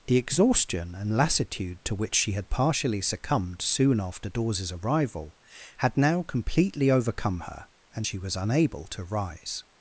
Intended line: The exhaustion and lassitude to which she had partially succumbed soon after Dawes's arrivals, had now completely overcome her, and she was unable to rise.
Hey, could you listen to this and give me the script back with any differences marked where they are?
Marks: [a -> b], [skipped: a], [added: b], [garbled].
The exhaustion and lassitude to which she had partially succumbed soon after Dawes's [arrivals, -> arrival] had now completely overcome her, and she was unable to rise.